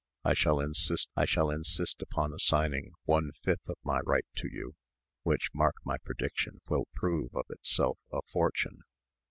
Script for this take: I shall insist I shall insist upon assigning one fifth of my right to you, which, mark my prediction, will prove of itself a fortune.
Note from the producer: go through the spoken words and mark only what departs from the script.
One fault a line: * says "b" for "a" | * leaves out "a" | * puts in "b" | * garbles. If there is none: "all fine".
all fine